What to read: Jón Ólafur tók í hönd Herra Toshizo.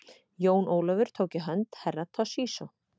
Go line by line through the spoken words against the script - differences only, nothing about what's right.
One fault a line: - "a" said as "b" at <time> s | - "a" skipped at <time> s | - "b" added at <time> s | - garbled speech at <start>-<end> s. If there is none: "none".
none